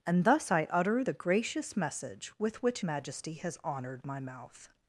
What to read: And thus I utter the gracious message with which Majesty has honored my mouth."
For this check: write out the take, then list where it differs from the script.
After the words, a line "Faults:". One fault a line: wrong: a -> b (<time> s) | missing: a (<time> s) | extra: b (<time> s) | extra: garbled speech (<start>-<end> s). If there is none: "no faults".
And thus I utter the gracious message with which Majesty has honored my mouth."
Faults:
no faults